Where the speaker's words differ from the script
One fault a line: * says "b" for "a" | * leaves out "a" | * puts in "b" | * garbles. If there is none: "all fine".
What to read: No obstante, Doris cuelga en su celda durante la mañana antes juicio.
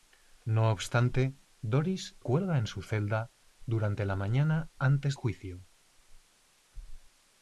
all fine